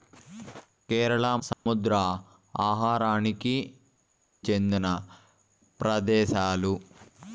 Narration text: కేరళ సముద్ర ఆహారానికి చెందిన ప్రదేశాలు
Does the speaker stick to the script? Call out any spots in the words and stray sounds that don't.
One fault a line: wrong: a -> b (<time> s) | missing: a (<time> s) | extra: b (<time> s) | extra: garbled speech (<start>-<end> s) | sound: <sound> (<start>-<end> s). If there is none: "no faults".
sound: dropout (1.5-1.7 s)